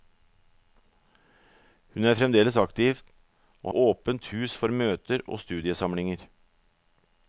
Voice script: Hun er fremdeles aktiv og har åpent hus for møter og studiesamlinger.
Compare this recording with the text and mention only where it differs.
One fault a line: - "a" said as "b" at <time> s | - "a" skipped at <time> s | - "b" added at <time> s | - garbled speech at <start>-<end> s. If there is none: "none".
- "har" skipped at 3.7 s